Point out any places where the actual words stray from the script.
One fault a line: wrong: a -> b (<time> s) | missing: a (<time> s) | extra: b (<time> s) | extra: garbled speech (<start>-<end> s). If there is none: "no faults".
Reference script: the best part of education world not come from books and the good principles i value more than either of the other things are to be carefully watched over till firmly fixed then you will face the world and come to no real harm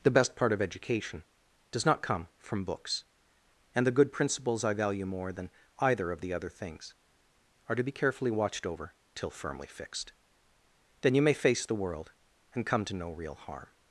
wrong: world -> does (1.7 s)
wrong: will -> may (11.2 s)